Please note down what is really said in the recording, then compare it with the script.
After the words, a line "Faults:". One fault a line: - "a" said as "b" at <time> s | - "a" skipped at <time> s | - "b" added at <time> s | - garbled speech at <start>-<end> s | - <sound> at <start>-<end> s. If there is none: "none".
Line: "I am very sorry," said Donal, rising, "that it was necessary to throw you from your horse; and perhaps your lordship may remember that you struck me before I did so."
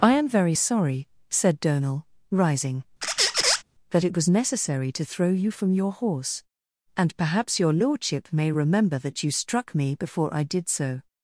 "I am very sorry," said Donal, rising, "that it was necessary to throw you from your horse; and perhaps your lordship may remember that you struck me before I did so."
Faults:
- squeak at 3.0-3.6 s